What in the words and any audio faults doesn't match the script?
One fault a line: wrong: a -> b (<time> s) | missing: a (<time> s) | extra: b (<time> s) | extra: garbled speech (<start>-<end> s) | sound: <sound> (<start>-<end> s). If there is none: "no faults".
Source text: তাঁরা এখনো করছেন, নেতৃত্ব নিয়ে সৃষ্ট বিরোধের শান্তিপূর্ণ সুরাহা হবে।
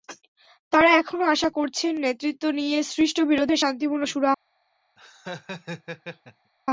extra: আশা (1.2 s)
sound: laugh (5.0-6.5 s)